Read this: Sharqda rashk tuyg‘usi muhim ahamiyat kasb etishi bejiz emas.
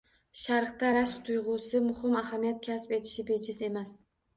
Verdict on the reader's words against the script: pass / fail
pass